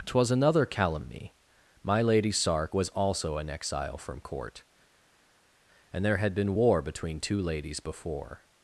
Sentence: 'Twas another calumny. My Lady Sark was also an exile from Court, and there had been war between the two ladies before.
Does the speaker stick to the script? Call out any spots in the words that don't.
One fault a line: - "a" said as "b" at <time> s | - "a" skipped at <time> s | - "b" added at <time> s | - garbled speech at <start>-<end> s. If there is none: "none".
- "the" skipped at 7.2 s